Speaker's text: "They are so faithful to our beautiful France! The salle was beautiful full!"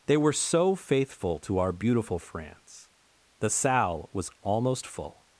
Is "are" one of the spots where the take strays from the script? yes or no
yes